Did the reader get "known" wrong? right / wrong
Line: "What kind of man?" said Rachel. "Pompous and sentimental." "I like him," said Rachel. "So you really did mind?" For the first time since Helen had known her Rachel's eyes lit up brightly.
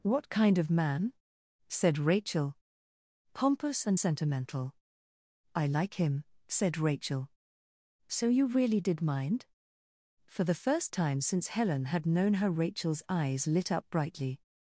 right